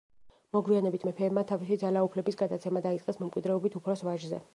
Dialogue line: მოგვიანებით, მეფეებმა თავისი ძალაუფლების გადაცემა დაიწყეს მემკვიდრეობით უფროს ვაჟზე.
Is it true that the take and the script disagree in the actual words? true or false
false